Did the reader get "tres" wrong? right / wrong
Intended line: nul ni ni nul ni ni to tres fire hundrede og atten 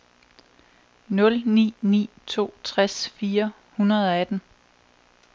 right